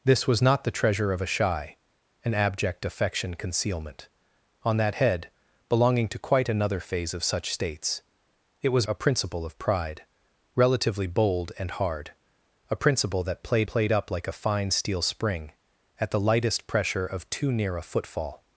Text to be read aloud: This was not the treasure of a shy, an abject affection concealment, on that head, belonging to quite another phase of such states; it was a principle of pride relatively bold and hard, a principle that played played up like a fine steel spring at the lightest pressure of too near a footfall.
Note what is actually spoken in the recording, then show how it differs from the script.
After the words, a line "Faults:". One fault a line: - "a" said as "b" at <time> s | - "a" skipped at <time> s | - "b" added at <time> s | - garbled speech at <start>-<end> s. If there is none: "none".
This was not the treasure of a shy, an abject affection concealment, on that head, belonging to quite another phase of such states; it was a principle of pride relatively bold and hard, a principle that played played up like a fine steel spring at the lightest pressure of too near a footfall.
Faults:
none